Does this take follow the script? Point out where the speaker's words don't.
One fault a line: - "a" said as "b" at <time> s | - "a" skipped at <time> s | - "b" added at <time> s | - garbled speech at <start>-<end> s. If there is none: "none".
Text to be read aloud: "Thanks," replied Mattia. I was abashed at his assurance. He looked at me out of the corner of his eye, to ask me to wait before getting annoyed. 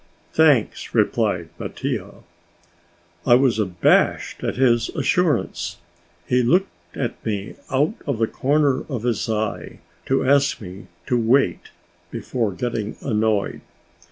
none